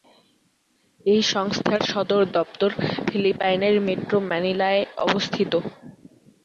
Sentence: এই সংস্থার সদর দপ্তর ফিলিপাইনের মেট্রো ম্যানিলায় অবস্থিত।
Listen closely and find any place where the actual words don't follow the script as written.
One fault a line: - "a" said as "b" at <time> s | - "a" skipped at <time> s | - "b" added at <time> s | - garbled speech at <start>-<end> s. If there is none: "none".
none